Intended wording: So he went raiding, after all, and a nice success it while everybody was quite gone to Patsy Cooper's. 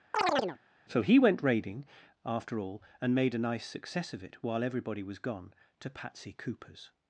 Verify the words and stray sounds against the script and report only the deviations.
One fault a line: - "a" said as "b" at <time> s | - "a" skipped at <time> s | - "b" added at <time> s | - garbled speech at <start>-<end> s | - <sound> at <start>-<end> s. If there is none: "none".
- chirp at 0.1-0.6 s
- "made" added at 3.1 s
- "of" added at 4.1 s
- "quite" skipped at 5.2 s